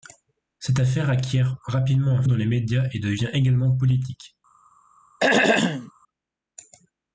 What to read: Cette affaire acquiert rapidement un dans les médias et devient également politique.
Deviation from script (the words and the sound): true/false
true